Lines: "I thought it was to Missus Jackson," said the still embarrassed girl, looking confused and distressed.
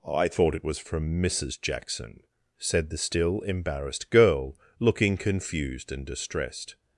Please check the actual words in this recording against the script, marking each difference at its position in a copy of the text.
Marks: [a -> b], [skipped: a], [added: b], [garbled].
"I thought it was [to -> from] Missus Jackson," said the still embarrassed girl, looking confused and distressed.